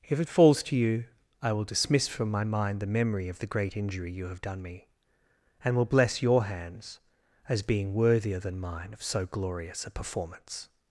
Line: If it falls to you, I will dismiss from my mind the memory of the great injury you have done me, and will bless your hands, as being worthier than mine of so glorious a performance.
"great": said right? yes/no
yes